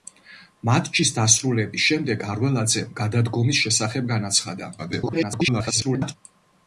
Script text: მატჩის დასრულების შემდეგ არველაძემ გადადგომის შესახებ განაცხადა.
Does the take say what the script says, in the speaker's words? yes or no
no